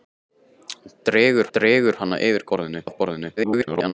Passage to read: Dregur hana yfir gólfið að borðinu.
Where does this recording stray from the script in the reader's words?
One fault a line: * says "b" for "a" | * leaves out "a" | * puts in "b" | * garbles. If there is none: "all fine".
* puts in "dregur"
* says "borðinu" for "gólfið"
* garbles